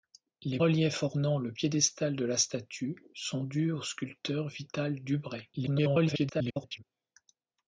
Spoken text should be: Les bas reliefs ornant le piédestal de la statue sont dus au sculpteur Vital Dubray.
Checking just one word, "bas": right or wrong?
wrong